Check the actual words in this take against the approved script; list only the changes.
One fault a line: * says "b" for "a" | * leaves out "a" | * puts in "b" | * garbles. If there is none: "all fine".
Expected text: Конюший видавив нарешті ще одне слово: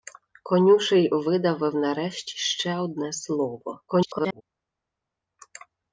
* garbles